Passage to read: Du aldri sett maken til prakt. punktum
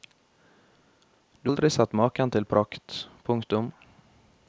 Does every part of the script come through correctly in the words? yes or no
yes